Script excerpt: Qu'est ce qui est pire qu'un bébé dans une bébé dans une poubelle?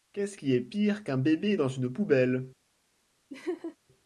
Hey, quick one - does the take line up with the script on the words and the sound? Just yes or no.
no